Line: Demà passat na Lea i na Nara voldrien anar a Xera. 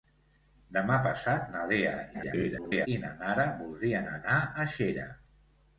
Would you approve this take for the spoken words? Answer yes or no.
no